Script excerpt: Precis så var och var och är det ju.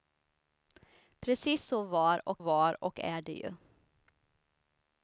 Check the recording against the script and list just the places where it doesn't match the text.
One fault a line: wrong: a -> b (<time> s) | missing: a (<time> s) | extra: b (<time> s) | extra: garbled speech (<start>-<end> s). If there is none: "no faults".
no faults